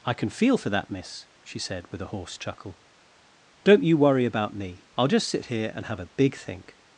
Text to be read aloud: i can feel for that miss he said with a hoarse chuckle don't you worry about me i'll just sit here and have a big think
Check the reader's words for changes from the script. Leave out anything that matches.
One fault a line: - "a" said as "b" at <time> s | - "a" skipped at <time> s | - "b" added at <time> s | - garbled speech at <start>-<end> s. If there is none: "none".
- "he" said as "she" at 1.4 s